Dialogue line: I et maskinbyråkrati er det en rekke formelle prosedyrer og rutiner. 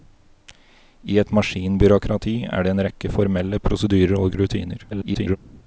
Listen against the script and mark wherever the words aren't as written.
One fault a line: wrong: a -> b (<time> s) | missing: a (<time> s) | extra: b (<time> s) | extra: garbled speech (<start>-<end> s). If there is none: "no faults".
extra: garbled speech (4.9-5.4 s)